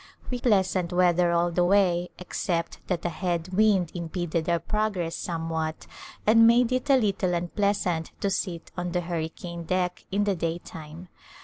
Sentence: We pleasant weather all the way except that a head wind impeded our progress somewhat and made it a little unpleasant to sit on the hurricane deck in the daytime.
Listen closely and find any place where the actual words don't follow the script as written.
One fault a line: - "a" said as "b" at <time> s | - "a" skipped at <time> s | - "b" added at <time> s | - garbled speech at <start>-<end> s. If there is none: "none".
none